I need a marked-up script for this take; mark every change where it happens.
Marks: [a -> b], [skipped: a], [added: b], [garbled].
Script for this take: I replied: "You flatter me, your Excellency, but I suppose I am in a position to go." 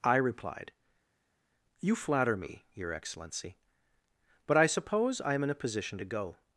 I replied: "You flatter me, your Excellency, but I suppose I am in a position to go."